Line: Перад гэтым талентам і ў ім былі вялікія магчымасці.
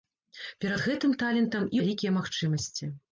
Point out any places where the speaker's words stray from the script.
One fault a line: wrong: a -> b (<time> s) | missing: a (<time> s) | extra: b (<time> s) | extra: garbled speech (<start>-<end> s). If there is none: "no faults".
missing: ў ім былі (1.8 s)